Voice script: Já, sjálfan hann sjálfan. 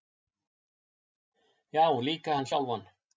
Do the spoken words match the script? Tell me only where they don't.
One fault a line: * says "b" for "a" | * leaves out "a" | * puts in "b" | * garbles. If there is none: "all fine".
* says "líka" for "sjálfan"